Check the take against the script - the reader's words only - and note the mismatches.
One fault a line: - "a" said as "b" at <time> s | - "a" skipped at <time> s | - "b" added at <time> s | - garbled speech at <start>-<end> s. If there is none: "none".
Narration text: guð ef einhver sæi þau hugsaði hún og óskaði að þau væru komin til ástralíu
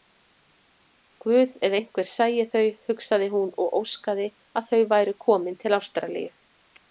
none